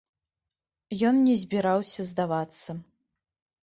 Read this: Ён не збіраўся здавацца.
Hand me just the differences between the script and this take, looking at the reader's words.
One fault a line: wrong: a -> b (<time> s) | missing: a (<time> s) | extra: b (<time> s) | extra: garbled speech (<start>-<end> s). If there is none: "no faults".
no faults